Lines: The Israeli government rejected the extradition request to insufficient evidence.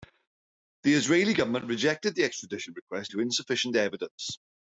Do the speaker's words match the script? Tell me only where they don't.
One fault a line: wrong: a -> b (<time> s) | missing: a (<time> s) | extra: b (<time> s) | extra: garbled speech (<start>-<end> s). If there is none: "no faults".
no faults